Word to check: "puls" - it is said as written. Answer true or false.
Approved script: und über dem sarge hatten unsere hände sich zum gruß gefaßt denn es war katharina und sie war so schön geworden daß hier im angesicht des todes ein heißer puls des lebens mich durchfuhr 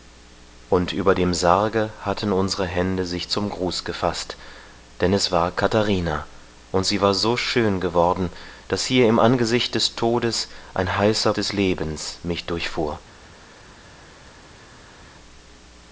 false